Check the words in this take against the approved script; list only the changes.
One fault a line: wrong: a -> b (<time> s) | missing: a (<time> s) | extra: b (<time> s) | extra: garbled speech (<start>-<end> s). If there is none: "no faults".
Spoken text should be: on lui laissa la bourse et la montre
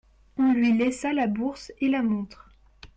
no faults